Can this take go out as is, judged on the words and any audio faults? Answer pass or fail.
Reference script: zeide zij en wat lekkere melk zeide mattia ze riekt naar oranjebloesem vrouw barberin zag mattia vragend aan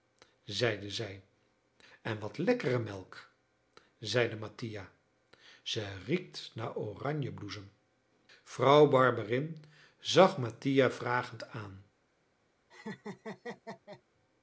fail